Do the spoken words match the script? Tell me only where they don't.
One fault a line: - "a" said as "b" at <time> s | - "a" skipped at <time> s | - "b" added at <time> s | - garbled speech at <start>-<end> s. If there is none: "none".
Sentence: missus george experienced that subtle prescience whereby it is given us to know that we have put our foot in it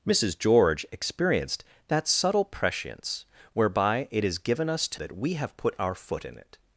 - "know" skipped at 5.0 s